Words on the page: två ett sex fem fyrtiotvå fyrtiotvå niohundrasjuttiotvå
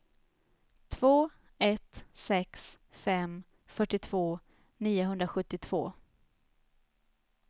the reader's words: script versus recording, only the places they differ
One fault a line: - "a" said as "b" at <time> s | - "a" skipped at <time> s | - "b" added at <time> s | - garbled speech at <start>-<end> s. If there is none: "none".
- "fyrtiotvå" skipped at 4.4 s